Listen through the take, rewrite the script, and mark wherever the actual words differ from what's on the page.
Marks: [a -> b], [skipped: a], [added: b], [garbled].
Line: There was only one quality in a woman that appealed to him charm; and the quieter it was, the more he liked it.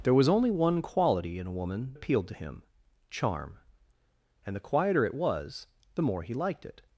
There was only one quality in a woman [skipped: that] appealed to him charm; and the quieter it was, the more he liked it.